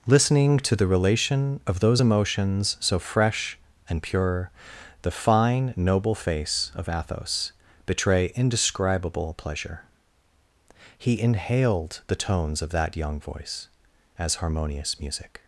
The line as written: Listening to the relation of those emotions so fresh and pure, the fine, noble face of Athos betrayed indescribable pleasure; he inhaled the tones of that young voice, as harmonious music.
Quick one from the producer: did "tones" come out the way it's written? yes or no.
yes